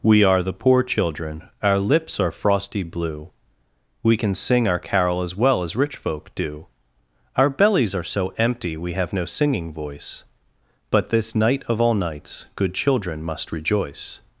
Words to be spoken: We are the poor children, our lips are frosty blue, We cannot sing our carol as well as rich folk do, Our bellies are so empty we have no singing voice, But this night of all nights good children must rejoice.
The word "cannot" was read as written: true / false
false